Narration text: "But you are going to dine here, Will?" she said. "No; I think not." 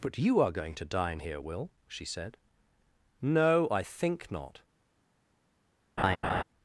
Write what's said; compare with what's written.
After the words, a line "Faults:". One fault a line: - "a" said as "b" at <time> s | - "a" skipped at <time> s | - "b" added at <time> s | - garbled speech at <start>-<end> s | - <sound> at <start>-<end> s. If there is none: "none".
"But you are going to dine here, Will?" she said. "No; I think not."
Faults:
- laugh at 6.0-6.4 s